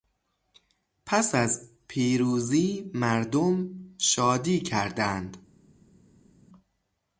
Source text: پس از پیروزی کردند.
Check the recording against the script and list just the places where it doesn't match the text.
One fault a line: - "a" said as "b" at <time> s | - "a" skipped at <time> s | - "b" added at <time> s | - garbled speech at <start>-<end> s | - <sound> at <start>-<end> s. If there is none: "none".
- "مردم شادی" added at 2.9 s